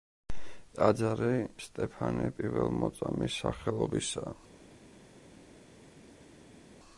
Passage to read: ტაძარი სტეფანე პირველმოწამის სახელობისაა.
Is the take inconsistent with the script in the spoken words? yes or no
no